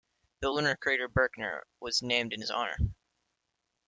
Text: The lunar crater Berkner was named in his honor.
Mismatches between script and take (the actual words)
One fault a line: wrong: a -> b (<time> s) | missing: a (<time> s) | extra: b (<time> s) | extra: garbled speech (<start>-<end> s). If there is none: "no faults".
no faults